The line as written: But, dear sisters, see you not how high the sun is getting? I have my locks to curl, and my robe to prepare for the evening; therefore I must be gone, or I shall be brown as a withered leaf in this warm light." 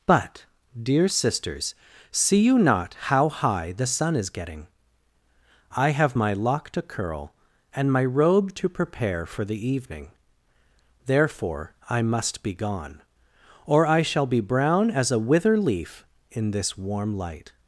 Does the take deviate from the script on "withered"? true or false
true